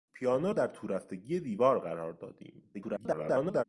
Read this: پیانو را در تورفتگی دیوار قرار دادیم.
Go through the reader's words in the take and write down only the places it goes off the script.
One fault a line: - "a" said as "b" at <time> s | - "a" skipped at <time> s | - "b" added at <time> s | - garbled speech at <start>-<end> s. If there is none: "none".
- "را" skipped at 0.5 s
- garbled speech at 2.7-3.6 s